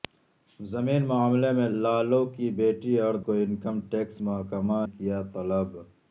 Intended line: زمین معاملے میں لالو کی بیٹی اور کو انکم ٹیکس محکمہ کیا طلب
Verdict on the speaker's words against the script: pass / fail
pass